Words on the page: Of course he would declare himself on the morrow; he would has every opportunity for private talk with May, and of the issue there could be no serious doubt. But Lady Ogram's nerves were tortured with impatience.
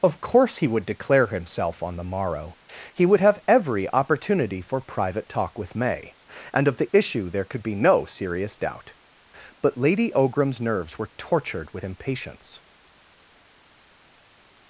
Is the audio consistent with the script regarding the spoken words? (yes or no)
no